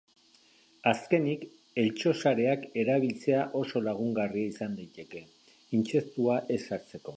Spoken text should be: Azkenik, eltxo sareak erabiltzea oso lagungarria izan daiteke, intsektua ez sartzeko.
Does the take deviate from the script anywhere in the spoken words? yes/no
no